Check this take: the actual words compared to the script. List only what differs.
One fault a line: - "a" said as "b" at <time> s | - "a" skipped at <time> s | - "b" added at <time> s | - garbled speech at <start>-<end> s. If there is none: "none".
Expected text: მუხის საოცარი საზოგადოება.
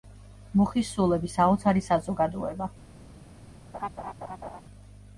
- "სულები" added at 0.9 s